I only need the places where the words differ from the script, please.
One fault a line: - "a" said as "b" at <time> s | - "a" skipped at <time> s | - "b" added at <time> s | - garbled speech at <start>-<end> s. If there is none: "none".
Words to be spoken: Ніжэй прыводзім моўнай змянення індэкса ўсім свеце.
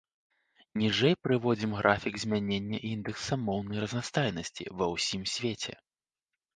- "моўнай" said as "графік" at 1.8 s
- "моўнай разнастайнасці ва" added at 3.5 s